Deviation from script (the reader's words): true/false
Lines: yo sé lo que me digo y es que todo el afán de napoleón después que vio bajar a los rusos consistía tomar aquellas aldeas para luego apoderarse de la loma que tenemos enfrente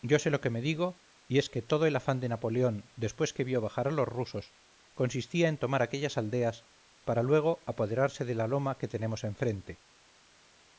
true